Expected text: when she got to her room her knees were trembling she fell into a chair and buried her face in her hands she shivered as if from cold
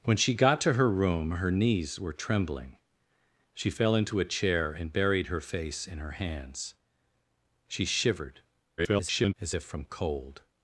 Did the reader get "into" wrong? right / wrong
right